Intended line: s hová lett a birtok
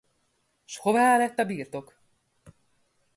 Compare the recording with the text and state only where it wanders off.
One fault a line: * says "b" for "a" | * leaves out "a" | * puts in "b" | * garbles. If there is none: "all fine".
all fine